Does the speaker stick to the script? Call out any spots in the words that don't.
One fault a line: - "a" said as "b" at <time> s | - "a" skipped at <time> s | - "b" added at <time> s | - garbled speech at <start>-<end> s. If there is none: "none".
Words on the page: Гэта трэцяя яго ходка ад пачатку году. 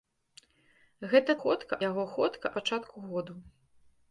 - "трэцяя" said as "ходка" at 1.4 s
- "ад" skipped at 2.5 s